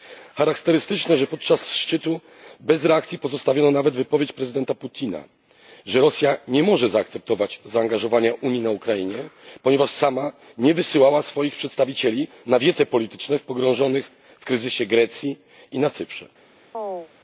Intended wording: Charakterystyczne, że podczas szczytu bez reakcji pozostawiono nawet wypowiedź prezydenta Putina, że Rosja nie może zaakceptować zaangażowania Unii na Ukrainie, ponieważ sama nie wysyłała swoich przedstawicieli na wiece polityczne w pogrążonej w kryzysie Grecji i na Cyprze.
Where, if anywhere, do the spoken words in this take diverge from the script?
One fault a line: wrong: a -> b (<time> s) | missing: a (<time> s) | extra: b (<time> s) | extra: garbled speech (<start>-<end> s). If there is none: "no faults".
no faults